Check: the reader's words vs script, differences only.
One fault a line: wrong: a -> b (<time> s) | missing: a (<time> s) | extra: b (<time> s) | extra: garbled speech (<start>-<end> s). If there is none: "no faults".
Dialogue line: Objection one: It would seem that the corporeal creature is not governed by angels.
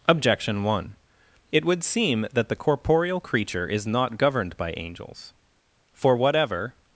extra: For whatever (5.9 s)